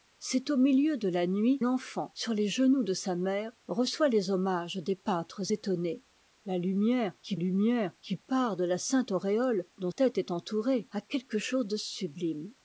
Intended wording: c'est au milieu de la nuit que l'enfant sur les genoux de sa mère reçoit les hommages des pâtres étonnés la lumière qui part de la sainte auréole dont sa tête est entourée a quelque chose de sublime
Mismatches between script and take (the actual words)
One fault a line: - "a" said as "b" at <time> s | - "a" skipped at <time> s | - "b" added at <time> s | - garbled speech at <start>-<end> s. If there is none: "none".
- "que" skipped at 1.6 s
- "lumière qui" added at 7.3 s
- "sa" skipped at 9.9 s